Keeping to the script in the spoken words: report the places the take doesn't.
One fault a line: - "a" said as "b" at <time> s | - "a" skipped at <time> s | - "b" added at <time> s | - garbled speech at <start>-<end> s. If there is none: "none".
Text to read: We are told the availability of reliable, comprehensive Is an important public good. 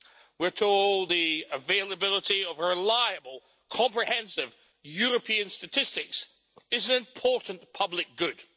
- "European statistics" added at 4.8 s